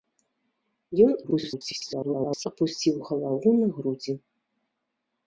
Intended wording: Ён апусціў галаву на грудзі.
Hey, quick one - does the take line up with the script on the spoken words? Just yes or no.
no